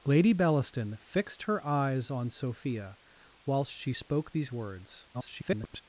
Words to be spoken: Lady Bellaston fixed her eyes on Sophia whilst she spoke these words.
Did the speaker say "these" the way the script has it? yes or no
yes